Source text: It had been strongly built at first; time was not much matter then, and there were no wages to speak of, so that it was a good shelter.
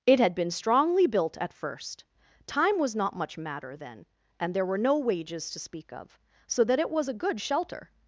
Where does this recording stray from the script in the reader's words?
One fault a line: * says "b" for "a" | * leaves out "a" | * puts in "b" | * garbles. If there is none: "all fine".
all fine